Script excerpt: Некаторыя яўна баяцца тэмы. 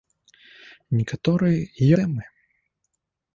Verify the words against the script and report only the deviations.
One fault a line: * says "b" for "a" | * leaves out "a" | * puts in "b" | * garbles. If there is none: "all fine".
* leaves out "яўна баяцца"